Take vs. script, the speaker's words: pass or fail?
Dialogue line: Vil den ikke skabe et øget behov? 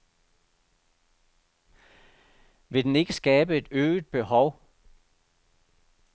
pass